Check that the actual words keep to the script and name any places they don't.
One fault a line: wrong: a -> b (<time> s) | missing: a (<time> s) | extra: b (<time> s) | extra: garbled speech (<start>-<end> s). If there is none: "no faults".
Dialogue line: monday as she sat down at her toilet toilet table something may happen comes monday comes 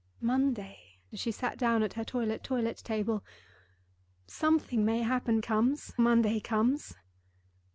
no faults